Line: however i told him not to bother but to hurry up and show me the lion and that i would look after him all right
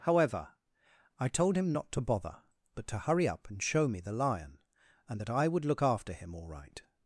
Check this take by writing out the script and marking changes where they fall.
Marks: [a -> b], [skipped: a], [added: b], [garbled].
however i told him not to bother but to hurry up and show me the lion and that i would look after him all right